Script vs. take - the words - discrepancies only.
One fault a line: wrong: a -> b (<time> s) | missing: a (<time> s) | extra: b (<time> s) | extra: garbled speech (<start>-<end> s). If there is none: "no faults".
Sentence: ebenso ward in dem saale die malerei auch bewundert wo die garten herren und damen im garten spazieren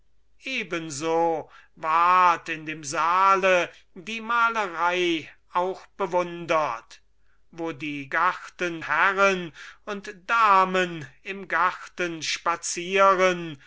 no faults